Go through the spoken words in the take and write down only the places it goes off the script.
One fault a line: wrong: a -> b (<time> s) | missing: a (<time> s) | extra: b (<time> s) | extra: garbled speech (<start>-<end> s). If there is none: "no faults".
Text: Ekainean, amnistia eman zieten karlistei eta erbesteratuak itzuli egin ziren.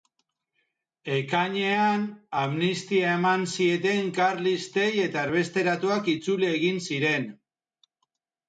no faults